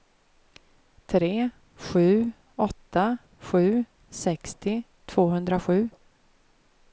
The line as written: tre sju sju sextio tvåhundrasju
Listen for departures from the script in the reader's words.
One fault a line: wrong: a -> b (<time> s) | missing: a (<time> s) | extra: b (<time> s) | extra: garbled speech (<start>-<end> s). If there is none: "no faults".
extra: åtta (2.5 s)